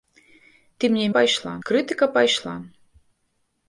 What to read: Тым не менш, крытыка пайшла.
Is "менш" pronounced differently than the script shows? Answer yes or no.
yes